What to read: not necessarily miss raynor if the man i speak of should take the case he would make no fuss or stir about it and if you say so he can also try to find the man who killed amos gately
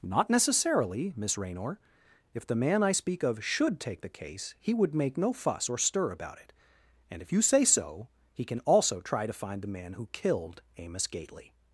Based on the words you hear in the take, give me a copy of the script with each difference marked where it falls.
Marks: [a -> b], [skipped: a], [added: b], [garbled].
not necessarily miss raynor if the man i speak of should take the case he would make no fuss or stir about it and if you say so he can also try to find the man who killed amos gately